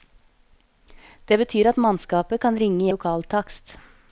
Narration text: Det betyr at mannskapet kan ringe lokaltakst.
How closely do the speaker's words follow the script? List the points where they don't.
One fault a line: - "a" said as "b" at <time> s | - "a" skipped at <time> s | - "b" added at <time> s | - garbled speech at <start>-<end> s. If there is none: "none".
none